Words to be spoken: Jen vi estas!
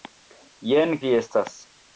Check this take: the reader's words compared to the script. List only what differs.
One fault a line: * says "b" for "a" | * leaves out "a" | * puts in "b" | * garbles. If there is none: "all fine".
all fine